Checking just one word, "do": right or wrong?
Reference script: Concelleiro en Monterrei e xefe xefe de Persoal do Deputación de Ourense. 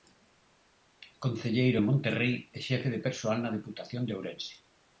wrong